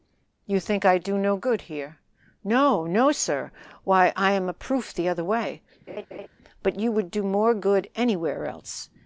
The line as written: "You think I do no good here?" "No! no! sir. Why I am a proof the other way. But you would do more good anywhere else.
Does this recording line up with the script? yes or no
yes